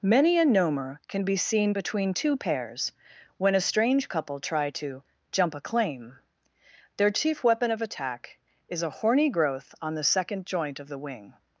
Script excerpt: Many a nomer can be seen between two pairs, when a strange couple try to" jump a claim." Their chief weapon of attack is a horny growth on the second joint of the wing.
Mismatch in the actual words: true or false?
false